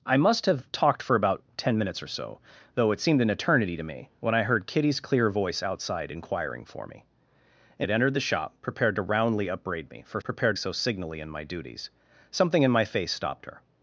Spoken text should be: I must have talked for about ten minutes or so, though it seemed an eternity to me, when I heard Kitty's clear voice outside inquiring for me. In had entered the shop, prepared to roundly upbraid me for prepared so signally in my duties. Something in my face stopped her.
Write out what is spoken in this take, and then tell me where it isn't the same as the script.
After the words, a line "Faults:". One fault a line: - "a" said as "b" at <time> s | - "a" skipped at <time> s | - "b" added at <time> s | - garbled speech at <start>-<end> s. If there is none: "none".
I must have talked for about ten minutes or so, though it seemed an eternity to me, when I heard Kitty's clear voice outside inquiring for me. In had entered the shop, prepared to roundly upbraid me for prepared so signally in my duties. Something in my face stopped her.
Faults:
none